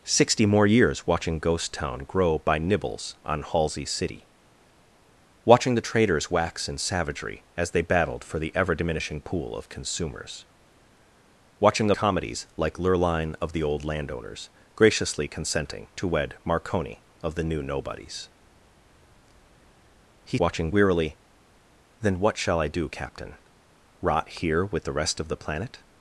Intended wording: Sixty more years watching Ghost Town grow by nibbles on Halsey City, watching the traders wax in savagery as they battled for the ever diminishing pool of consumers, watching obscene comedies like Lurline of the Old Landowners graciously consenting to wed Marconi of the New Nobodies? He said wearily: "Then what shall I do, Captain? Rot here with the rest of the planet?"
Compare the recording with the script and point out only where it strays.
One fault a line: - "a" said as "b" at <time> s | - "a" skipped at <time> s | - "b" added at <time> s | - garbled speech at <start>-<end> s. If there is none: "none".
- "obscene" skipped at 11.9 s
- "said" said as "watching" at 20.4 s